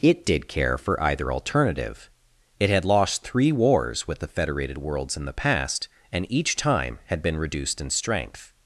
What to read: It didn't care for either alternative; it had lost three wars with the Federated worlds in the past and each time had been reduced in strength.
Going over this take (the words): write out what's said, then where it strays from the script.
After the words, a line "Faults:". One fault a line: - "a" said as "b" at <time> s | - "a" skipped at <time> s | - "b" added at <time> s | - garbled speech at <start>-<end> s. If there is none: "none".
It did care for either alternative; it had lost three wars with the Federated worlds in the past and each time had been reduced in strength.
Faults:
- "didn't" said as "did" at 0.2 s